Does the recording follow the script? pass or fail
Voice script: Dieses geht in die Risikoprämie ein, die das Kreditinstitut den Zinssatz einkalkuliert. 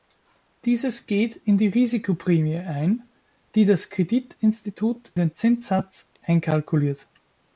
pass